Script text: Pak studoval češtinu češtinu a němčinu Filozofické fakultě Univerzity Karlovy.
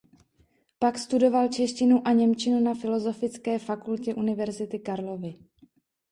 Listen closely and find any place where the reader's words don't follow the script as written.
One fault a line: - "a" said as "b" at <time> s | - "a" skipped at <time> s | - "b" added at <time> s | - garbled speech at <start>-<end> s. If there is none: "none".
- "češtinu" skipped at 2.1 s
- "na" added at 2.6 s